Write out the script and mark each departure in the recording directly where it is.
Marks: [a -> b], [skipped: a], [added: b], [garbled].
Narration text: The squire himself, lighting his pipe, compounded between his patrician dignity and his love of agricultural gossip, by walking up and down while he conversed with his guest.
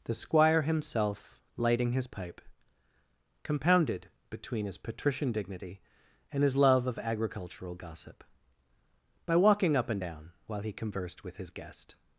The squire himself, lighting his pipe, compounded between his patrician dignity and his love of agricultural gossip, by walking up and down while he conversed with his guest.